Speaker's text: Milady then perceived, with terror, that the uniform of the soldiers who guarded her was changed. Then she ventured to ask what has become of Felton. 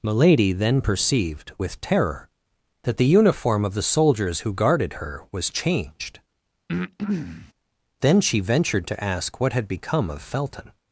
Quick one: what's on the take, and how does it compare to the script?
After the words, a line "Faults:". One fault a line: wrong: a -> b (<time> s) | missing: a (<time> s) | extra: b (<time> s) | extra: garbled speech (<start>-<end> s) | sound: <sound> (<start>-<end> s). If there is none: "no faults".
Milady then perceived, with terror, that the uniform of the soldiers who guarded her was changed. Then she ventured to ask what had become of Felton.
Faults:
sound: breath (6.7-7.5 s)
wrong: has -> had (9.5 s)